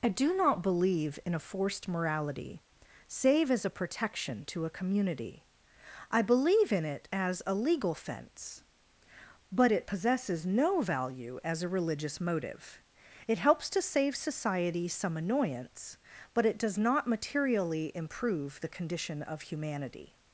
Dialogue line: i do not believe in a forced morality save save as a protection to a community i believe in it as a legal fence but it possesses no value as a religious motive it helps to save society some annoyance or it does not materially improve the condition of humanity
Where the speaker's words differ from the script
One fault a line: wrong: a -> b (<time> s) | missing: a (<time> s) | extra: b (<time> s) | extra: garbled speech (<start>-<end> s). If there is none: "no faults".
missing: save (3.5 s)
wrong: or -> but (16.3 s)